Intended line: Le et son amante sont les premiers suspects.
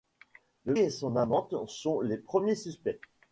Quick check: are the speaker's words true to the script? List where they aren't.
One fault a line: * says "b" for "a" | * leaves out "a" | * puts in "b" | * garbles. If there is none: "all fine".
all fine